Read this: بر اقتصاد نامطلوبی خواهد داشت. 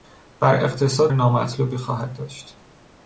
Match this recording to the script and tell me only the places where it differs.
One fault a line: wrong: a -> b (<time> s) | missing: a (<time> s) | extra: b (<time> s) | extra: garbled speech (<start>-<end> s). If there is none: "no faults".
no faults